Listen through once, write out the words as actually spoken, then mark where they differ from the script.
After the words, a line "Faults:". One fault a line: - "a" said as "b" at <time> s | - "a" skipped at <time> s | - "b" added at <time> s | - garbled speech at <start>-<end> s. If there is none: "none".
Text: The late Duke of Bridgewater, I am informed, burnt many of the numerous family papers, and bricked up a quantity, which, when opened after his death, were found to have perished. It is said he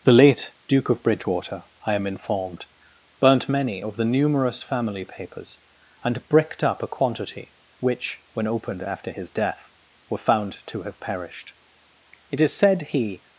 The late Duke of Bridgewater, I am informed, burnt many of the numerous family papers, and bricked up a quantity, which, when opened after his death, were found to have perished. It is said he
Faults:
none